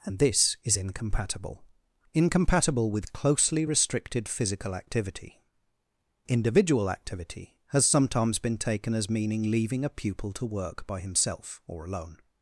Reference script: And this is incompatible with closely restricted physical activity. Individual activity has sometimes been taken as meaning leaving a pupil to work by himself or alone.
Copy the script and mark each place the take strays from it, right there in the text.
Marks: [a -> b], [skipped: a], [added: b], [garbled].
And this is incompatible [added: incompatible] with closely restricted physical activity. Individual activity has sometimes been taken as meaning leaving a pupil to work by himself or alone.